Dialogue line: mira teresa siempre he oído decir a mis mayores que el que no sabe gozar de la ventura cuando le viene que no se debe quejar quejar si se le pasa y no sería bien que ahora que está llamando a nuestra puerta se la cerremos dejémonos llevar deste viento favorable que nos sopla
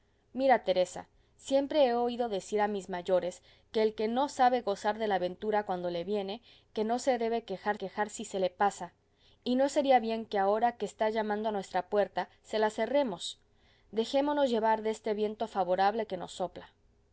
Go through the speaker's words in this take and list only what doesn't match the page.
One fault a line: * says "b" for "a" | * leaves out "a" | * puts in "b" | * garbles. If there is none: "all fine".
all fine